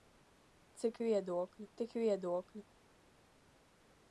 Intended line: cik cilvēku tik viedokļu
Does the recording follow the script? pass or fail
fail